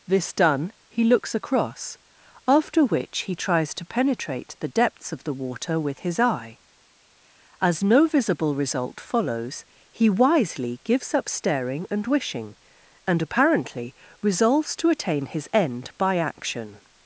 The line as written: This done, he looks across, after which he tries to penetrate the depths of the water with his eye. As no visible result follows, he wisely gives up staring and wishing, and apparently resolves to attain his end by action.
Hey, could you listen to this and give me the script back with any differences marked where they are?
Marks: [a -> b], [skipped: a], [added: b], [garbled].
This done, he looks across, after which he tries to penetrate the depths of the water with his eye. As no visible result follows, he wisely gives up staring and wishing, and apparently resolves to attain his end by action.